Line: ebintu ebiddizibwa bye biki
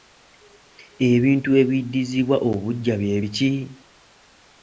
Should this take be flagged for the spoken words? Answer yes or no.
yes